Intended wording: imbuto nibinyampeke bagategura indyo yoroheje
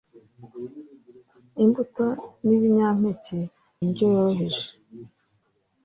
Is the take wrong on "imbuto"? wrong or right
right